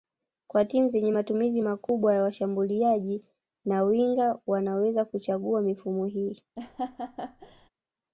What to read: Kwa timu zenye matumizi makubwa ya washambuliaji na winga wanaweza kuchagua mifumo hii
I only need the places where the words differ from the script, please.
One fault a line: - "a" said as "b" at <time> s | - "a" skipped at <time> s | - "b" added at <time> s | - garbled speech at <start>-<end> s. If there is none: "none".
none